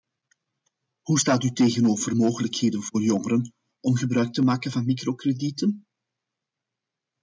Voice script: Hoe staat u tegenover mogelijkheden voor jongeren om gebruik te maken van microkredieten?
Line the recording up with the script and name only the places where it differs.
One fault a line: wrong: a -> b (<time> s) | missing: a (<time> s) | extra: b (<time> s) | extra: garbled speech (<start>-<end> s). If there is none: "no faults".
no faults